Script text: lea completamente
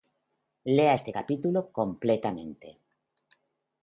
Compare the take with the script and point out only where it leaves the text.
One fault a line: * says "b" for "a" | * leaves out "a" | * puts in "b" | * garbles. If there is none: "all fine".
* puts in "este capítulo"